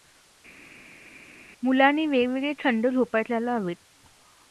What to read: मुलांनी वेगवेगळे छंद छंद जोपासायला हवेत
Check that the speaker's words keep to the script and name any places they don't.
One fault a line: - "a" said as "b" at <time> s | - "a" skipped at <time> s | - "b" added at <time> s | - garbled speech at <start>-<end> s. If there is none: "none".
- "छंद" skipped at 2.9 s